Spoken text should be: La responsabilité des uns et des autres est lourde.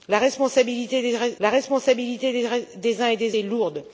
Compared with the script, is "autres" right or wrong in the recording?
wrong